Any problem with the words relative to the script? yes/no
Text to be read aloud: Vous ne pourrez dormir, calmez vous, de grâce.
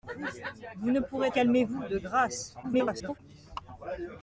yes